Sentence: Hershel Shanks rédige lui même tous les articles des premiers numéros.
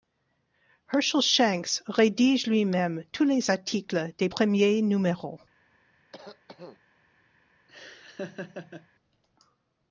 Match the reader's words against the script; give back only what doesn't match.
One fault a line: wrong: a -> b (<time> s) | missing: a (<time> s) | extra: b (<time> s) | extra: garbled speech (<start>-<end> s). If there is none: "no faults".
no faults